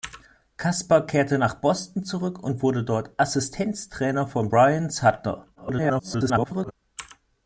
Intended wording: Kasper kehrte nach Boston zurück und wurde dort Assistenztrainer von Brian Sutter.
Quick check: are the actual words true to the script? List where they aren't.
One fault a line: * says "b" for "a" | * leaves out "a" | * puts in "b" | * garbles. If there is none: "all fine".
* garbles